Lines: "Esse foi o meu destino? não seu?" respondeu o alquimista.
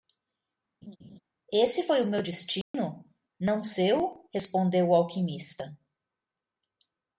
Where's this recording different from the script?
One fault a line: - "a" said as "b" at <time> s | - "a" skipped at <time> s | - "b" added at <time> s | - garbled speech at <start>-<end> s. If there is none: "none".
none